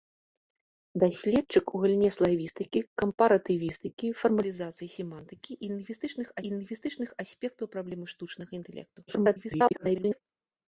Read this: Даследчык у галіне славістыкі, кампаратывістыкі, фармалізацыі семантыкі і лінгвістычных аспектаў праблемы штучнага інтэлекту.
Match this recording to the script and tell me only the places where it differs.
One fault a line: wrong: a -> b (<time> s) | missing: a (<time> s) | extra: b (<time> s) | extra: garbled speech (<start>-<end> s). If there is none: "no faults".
extra: і лінгвістычных (6.4 s)
extra: garbled speech (9.1-10.2 s)